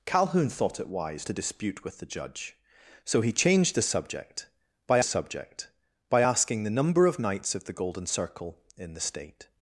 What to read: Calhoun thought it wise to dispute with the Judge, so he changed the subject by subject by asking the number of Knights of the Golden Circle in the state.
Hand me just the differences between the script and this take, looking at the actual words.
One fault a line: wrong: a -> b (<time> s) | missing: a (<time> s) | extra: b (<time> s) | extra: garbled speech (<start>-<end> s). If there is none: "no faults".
no faults